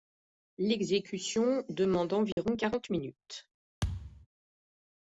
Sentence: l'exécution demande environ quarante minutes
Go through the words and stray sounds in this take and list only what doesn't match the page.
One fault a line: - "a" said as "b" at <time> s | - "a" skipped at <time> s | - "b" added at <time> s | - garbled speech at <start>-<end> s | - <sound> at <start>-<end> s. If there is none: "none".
- dropout at 2.3-2.4 s
- thud at 3.8-4.3 s